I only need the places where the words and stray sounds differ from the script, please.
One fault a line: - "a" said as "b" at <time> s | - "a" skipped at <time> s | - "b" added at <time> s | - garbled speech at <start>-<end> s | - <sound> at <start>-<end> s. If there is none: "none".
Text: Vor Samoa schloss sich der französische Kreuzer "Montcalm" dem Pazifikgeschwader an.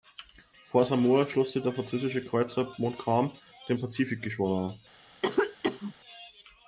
- cough at 5.2-5.9 s